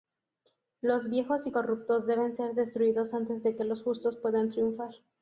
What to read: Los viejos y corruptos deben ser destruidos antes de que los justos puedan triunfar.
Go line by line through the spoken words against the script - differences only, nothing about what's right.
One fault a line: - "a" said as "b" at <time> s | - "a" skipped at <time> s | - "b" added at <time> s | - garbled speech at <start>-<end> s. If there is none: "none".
none